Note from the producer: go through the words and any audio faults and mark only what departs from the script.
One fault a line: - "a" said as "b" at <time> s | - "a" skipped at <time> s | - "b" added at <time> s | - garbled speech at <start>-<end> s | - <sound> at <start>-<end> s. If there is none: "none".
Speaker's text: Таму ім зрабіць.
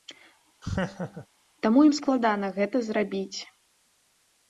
- laugh at 0.6-1.3 s
- "складана гэта" added at 2.0 s